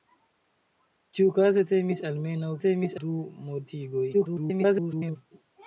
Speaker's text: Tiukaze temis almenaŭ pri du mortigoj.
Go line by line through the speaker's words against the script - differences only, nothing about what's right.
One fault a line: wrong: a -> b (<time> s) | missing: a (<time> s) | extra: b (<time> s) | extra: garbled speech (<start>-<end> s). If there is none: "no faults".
wrong: pri -> temis (2.6 s)
extra: garbled speech (4.1-5.2 s)